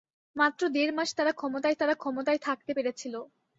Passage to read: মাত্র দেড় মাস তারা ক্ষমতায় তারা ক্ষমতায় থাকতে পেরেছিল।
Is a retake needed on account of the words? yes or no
no